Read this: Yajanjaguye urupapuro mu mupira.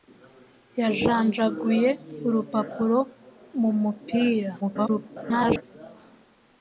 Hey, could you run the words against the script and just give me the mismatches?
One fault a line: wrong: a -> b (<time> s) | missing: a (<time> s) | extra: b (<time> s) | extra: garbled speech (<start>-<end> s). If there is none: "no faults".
extra: garbled speech (4.6-5.6 s)